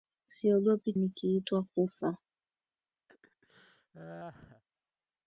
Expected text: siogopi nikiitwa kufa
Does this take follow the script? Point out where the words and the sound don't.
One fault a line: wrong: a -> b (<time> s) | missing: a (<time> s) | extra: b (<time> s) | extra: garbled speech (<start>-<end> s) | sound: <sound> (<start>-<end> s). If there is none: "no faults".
sound: laugh (3.1-4.6 s)